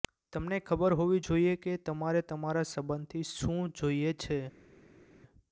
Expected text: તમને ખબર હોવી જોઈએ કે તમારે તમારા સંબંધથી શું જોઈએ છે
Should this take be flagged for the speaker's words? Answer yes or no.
no